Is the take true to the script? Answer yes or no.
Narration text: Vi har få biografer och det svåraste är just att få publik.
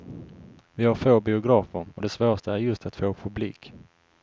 yes